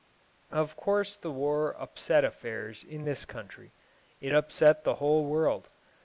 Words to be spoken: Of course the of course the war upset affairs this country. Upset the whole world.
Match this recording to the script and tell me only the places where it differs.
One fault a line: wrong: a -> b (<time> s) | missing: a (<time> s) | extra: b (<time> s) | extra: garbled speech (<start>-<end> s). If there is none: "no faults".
missing: of course the (1.3 s)
extra: in (2.8 s)
extra: It (4.2 s)